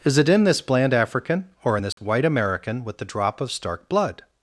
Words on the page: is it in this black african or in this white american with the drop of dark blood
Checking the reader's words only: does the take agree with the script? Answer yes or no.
no